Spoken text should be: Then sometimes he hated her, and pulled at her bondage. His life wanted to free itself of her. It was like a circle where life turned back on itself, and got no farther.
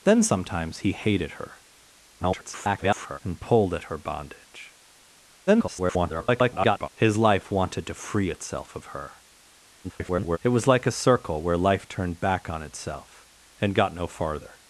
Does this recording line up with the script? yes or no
no